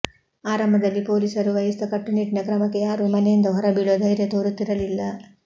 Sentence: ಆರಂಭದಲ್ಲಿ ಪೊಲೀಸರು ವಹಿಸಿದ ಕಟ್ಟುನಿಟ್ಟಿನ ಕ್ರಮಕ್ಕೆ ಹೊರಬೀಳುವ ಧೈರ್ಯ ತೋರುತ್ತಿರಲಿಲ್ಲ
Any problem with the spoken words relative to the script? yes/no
yes